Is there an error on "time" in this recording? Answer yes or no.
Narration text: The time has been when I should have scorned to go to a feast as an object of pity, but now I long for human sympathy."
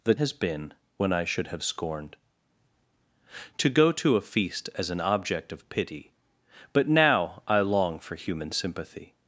yes